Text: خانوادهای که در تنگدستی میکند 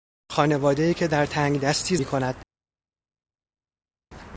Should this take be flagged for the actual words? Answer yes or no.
no